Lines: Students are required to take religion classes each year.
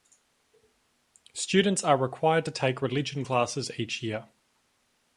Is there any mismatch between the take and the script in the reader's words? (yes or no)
no